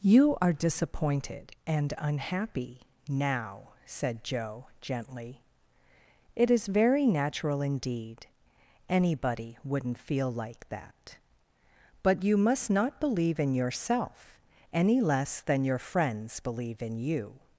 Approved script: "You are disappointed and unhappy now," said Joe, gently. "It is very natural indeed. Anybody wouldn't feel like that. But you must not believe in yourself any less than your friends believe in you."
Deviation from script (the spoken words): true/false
false